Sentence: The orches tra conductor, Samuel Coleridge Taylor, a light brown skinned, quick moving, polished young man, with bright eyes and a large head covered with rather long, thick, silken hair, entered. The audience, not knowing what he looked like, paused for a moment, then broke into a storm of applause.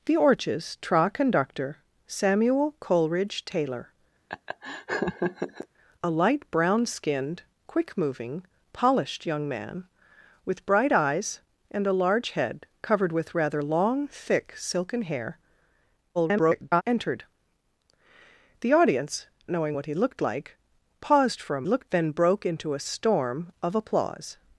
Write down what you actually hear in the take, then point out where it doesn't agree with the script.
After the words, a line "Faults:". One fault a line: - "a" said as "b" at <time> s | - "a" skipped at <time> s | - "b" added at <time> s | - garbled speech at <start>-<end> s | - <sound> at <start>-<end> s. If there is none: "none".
The orches tra conductor, Samuel Coleridge Taylor, a light brown skinned, quick moving, polished young man, with bright eyes and a large head covered with rather long, thick, silken hair, [garbled] entered. The audience, knowing what he looked like, paused for a looked, then broke into a storm of applause.
Faults:
- laugh at 4.3-5.7 s
- garbled speech at 16.1-16.8 s
- "not" skipped at 19.3 s
- "moment" said as "looked" at 21.6 s